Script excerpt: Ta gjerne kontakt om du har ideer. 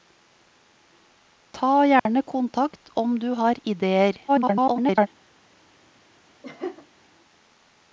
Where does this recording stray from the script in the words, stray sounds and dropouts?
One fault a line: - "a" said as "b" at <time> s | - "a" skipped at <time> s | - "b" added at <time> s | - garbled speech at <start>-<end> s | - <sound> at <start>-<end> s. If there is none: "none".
- dropout at 2.0-2.1 s
- garbled speech at 4.3-5.1 s
- laugh at 6.4-6.9 s